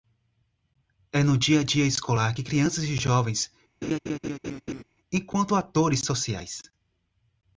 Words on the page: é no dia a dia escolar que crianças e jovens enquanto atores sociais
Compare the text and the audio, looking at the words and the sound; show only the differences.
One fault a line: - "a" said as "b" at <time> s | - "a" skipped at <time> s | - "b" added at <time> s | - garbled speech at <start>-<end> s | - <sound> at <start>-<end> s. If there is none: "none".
- laugh at 3.8-4.8 s